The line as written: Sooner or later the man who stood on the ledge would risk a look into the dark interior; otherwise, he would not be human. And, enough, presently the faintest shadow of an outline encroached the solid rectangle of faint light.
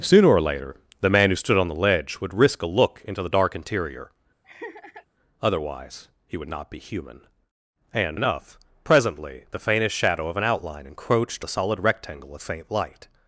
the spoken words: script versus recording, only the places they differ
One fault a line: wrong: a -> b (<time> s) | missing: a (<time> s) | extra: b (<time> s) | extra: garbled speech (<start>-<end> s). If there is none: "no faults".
no faults